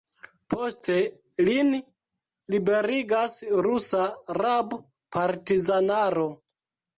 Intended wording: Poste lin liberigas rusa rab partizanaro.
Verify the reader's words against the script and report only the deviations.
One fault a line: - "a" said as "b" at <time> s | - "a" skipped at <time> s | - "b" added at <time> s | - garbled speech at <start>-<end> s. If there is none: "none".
none